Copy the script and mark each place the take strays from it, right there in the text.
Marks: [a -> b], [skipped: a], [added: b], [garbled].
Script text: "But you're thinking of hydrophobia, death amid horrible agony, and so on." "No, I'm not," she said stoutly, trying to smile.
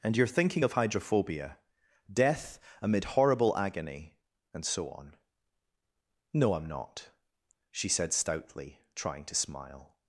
["But -> And] you're thinking of hydrophobia, death amid horrible agony, and so on." "No, I'm not," she said stoutly, trying to smile.